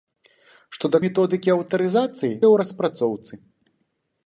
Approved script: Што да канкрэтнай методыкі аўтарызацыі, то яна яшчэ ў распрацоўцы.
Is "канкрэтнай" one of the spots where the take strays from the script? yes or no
yes